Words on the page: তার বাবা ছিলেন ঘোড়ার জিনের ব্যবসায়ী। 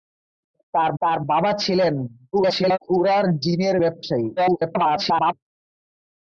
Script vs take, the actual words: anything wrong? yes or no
yes